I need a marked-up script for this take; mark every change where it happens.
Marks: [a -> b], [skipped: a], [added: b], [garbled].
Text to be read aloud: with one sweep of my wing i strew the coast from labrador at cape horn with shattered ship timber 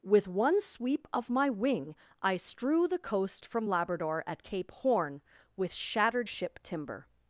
with one sweep of my wing i strew the coast from labrador at cape horn with shattered ship timber